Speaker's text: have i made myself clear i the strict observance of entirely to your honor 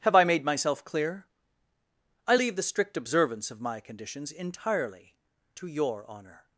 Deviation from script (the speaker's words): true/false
true